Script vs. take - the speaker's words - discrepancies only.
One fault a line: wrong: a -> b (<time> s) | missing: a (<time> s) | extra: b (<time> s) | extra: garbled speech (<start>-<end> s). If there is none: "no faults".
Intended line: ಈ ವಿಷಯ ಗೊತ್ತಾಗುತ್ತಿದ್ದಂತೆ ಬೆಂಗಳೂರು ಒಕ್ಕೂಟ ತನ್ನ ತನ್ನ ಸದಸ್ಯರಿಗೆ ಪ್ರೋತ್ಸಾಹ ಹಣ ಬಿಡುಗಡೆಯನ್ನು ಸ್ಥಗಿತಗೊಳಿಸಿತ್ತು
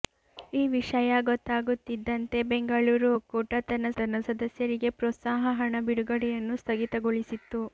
no faults